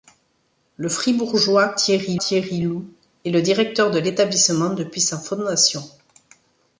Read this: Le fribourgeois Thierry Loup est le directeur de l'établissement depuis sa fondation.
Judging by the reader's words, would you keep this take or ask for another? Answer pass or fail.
fail